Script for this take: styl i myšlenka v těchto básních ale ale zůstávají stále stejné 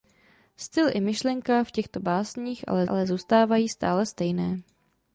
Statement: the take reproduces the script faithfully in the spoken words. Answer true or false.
true